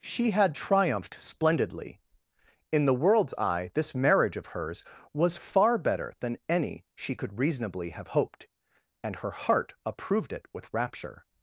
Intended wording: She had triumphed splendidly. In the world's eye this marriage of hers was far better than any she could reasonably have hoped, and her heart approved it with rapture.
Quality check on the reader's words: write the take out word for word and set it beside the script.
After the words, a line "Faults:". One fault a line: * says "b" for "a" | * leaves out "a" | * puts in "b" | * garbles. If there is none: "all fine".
She had triumphed splendidly. In the world's eye this marriage of hers was far better than any she could reasonably have hoped, and her heart approved it with rapture.
Faults:
all fine